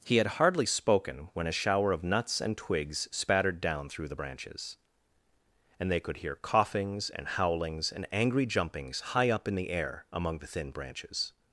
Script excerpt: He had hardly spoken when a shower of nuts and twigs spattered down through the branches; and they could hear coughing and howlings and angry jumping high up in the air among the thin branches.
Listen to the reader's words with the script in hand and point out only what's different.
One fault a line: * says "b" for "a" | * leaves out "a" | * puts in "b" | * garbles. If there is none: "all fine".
* says "coughings" for "coughing"
* says "jumpings" for "jumping"